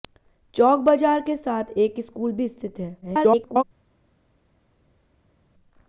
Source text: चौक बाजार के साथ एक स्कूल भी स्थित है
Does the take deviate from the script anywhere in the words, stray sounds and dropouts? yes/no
yes